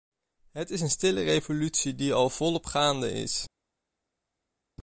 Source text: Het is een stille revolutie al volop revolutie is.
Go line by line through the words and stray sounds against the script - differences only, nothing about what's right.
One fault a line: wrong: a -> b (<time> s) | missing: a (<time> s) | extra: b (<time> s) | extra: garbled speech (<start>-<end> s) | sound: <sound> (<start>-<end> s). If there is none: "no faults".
extra: die (1.9 s)
wrong: revolutie -> gaande (2.6 s)